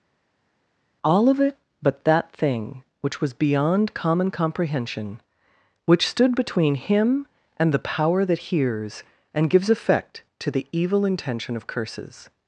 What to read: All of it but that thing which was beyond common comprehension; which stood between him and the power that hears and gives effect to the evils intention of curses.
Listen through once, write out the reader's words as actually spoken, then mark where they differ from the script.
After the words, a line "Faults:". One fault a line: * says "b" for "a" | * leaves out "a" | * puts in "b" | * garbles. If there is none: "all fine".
All of it but that thing which was beyond common comprehension; which stood between him and the power that hears and gives effect to the evil intention of curses.
Faults:
* says "evil" for "evils"